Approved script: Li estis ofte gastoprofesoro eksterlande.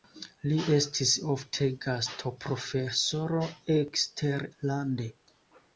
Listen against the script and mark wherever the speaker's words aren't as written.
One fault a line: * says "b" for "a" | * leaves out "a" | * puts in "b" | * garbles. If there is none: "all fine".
all fine